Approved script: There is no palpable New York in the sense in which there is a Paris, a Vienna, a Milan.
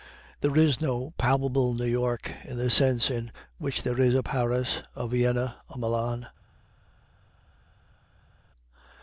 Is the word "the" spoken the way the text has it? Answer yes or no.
yes